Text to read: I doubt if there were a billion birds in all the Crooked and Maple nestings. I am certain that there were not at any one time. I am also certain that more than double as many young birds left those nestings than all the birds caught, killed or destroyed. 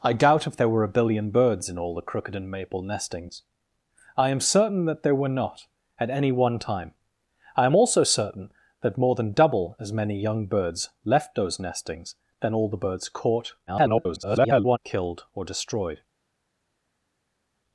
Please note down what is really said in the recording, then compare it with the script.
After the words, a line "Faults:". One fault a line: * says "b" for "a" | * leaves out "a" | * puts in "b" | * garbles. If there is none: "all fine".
I doubt if there were a billion birds in all the Crooked and Maple nestings. I am certain that there were not at any one time. I am also certain that more than double as many young birds left those nestings than all the birds caught, [garbled] killed or destroyed.
Faults:
* garbles